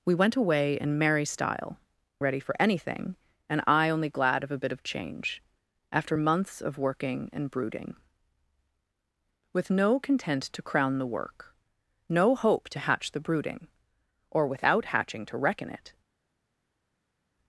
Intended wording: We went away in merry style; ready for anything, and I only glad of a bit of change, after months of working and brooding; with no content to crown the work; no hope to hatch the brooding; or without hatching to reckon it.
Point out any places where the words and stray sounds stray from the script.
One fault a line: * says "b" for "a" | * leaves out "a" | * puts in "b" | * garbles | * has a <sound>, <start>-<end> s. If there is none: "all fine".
all fine